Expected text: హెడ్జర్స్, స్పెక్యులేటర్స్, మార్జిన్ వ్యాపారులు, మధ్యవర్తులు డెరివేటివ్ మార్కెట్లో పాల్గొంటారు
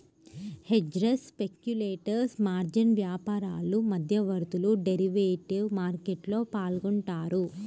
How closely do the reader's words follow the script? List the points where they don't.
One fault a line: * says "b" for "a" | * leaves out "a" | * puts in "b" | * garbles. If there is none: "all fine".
all fine